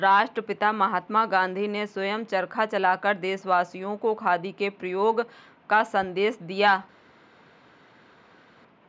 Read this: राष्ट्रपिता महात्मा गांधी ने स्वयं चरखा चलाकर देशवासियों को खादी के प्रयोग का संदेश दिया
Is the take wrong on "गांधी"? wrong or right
right